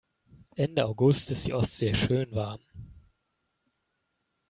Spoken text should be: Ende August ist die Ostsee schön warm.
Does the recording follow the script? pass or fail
pass